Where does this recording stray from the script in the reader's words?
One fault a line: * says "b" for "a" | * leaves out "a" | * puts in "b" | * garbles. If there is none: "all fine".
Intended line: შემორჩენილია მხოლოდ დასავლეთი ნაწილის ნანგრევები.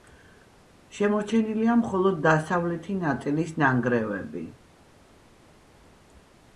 all fine